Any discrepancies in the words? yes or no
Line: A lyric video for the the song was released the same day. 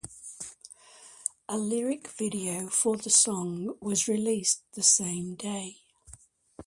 yes